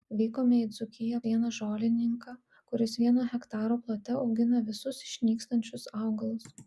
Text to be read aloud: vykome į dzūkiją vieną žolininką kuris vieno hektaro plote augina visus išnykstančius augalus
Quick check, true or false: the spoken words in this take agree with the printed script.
true